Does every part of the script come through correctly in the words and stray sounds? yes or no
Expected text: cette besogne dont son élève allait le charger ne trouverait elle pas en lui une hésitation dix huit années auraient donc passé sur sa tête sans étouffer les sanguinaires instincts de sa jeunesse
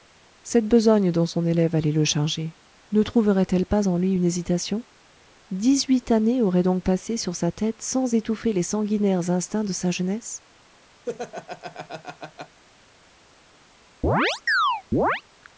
no